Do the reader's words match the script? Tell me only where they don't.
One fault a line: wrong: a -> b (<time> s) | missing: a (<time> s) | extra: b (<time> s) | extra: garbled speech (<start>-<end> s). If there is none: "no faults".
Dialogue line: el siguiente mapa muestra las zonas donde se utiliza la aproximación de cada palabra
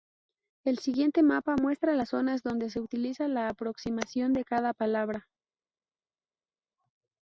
no faults